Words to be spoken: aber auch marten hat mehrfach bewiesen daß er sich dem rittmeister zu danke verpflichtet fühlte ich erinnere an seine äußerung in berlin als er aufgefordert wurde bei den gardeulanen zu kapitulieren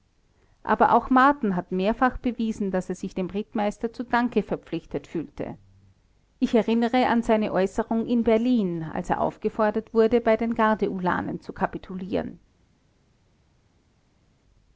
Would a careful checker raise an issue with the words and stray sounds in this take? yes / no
no